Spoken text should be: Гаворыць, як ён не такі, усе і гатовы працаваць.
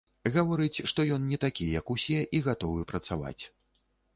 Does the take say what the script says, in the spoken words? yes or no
no